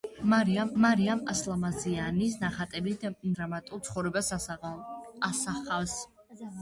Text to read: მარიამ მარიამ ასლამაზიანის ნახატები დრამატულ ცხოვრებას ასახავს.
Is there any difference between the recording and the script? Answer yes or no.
no